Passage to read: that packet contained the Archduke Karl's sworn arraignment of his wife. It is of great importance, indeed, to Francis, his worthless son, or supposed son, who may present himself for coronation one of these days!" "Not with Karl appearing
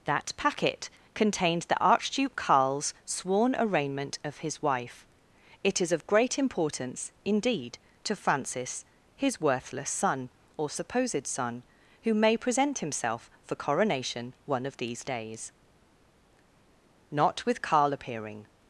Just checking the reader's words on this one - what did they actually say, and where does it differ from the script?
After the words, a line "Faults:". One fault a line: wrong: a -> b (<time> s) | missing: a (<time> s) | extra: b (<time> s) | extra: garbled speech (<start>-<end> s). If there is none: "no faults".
that packet contained the Archduke Karl's sworn arraignment of his wife. It is of great importance, indeed, to Francis, his worthless son, or supposed son, who may present himself for coronation one of these days!" "Not with Karl appearing
Faults:
no faults